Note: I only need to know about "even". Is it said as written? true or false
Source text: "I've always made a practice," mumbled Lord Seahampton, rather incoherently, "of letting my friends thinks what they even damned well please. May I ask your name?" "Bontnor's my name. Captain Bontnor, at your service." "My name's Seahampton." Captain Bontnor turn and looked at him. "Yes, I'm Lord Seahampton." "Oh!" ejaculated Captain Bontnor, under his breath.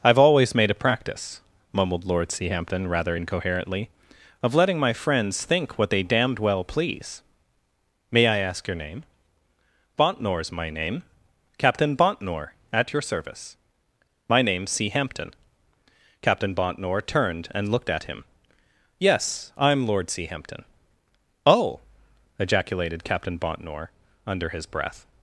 false